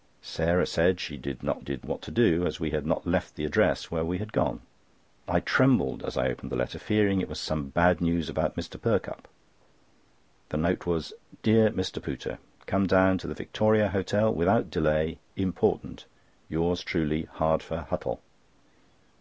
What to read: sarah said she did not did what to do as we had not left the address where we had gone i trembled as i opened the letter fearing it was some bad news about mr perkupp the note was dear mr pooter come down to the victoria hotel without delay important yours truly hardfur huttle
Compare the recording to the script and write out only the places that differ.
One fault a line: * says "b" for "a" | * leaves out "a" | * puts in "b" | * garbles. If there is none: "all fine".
all fine